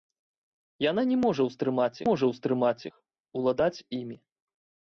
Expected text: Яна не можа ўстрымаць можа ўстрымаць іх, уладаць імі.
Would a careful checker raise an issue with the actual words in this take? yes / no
no